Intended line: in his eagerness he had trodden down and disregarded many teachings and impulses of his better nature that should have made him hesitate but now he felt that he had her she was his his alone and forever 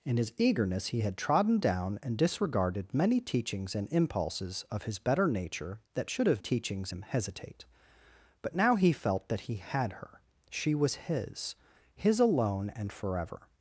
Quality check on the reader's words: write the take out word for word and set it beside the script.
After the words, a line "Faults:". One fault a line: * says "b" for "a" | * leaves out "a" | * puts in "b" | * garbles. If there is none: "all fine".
in his eagerness he had trodden down and disregarded many teachings and impulses of his better nature that should have teachings him hesitate but now he felt that he had her she was his his alone and forever
Faults:
* says "teachings" for "made"